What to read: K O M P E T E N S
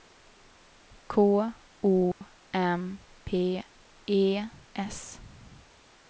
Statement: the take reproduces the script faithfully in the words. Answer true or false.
false